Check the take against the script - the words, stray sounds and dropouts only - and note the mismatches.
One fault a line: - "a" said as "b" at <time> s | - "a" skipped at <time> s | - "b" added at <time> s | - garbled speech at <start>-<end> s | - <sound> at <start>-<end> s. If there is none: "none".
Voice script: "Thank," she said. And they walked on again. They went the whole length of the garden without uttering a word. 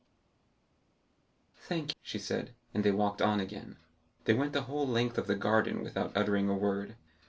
none